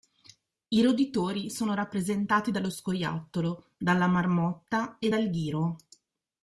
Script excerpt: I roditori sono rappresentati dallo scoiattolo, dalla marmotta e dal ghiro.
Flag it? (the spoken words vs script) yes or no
no